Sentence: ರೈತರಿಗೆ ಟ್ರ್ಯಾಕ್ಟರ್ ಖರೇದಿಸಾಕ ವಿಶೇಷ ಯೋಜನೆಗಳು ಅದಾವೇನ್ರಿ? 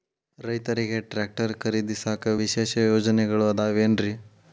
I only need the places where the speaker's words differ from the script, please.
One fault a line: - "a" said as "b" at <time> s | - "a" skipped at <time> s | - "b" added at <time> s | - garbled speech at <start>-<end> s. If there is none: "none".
none